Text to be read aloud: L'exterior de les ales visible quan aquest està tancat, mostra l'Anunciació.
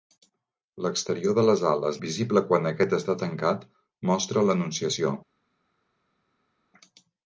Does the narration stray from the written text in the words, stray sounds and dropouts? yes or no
no